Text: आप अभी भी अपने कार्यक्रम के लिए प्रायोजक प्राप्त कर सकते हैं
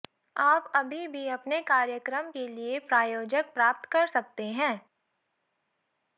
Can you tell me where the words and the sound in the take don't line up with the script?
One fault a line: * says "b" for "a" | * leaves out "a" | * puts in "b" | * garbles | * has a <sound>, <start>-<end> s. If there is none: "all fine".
all fine